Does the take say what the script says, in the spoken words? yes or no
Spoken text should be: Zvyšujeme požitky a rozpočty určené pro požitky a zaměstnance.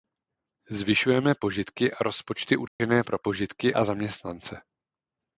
yes